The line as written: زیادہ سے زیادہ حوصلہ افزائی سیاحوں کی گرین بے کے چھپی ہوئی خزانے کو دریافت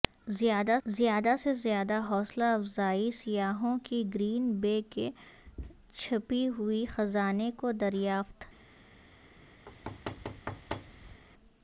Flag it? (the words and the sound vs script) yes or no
yes